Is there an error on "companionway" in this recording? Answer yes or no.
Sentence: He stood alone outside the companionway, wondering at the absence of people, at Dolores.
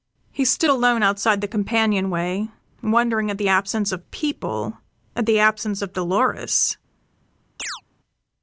no